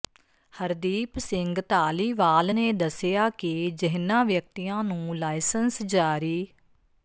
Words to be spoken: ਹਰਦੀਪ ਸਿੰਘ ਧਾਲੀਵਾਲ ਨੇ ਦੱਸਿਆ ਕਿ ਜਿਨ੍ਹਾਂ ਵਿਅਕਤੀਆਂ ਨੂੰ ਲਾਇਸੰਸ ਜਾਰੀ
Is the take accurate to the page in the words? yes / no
yes